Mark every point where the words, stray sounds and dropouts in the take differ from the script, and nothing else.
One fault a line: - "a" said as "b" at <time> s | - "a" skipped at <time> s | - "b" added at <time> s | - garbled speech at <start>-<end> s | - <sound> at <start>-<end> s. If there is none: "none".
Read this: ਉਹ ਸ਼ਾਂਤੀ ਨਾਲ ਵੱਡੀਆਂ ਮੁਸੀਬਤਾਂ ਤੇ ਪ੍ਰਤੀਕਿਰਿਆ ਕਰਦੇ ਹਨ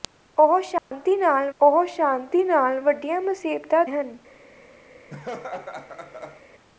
- dropout at 0.8-0.9 s
- "ਵੱਡੀਆਂ ਮੁਸੀਬਤਾਂ ਤੇ ਪ੍ਰਤੀਕਿਰਿਆ ਕਰਦੇ" said as "ਉਹ ਸ਼ਾਂਤੀ ਨਾਲ ਵੱਡੀਆਂ ਮੁਸੀਬਤਾਂ" at 1.6 s
- laugh at 5.1-6.4 s